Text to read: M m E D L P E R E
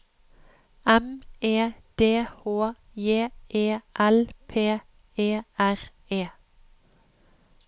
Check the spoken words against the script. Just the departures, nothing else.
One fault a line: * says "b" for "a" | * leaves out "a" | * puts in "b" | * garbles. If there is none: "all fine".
* leaves out "m"
* puts in "H J E"